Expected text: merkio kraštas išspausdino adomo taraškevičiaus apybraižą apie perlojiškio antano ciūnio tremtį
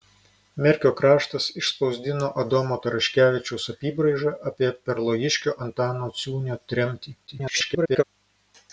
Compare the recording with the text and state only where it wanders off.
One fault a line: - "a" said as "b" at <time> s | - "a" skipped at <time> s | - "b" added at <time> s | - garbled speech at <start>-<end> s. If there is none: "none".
- garbled speech at 7.3-8.0 s